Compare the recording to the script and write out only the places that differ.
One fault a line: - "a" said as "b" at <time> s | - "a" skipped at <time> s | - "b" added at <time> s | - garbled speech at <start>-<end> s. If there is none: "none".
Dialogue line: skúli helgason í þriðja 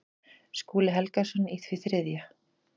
- "því" added at 1.7 s